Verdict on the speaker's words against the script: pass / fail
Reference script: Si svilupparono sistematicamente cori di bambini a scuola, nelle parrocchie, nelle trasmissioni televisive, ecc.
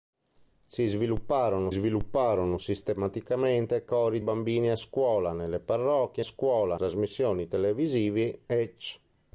fail